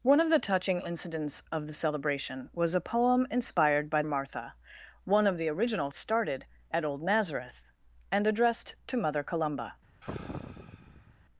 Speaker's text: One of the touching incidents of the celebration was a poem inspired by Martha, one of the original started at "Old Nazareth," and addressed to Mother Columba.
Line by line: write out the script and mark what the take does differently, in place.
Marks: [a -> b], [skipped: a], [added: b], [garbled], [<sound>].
One of the touching incidents of the celebration was a poem inspired by Martha, one of the original started at "Old Nazareth," and addressed to Mother Columba. [sigh]